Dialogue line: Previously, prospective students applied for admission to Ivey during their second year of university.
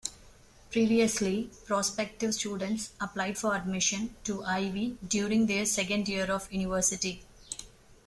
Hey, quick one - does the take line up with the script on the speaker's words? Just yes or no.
yes